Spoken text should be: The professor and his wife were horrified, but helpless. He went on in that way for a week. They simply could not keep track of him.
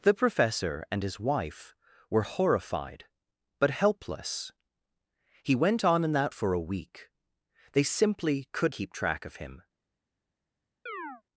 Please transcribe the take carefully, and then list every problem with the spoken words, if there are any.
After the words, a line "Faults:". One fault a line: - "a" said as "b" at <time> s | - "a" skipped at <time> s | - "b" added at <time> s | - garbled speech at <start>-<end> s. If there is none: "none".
The professor and his wife were horrified, but helpless. He went on in that for a week. They simply could keep track of him.
Faults:
- "way" skipped at 6.3 s
- "not" skipped at 8.7 s